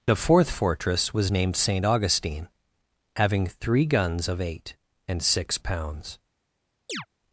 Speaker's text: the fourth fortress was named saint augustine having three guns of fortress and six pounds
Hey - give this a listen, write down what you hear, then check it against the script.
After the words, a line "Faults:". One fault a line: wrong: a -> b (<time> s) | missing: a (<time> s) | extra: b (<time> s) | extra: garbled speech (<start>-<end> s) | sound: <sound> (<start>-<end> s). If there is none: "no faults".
the fourth fortress was named saint augustine having three guns of eight and six pounds
Faults:
wrong: fortress -> eight (4.4 s)
sound: chirp (6.9-7.1 s)